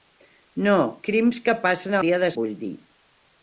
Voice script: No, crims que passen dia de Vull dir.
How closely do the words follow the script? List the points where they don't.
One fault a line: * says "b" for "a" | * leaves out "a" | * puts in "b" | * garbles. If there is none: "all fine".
all fine